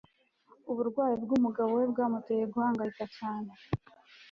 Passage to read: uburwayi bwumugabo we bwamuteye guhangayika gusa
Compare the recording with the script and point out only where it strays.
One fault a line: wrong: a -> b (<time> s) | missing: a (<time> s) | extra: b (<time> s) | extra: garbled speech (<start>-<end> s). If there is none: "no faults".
wrong: gusa -> cyane (3.2 s)